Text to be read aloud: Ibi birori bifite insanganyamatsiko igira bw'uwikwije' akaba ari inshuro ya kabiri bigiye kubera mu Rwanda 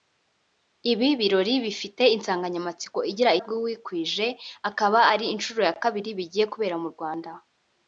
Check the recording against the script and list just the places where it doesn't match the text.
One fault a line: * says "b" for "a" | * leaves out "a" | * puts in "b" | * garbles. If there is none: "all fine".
all fine